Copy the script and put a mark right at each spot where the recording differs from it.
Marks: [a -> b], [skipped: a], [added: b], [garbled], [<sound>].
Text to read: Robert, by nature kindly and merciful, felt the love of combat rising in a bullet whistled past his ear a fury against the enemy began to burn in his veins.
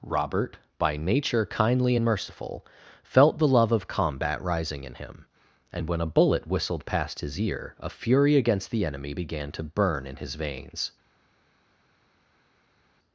Robert, by nature kindly and merciful, felt the love of combat rising in [added: him and when] a bullet whistled past his ear a fury against the enemy began to burn in his veins.